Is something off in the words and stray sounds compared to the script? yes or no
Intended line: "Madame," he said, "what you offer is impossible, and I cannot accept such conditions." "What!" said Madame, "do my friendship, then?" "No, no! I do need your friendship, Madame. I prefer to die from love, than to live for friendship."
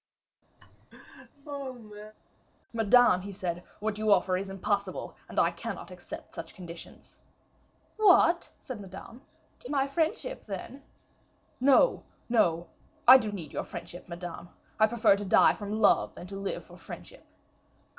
yes